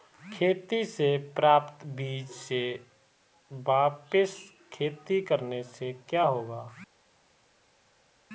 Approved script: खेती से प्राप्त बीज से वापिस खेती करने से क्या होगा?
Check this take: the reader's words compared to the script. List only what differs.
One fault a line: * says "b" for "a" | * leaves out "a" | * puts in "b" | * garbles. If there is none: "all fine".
all fine